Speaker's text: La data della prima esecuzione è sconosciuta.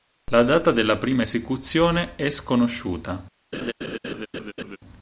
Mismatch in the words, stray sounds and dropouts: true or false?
true